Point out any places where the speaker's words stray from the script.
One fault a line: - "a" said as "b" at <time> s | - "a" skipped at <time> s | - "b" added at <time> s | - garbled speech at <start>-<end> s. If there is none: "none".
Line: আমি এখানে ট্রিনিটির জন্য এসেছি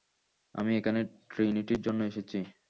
none